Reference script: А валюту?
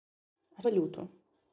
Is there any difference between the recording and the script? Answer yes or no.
no